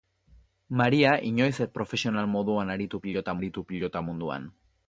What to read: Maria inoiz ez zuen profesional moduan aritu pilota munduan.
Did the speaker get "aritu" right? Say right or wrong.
right